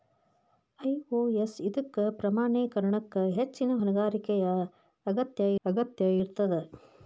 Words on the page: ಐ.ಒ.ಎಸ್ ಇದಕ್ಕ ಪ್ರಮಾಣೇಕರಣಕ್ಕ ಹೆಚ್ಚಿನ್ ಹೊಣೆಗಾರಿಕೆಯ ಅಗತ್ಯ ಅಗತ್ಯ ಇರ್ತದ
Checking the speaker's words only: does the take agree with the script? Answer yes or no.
yes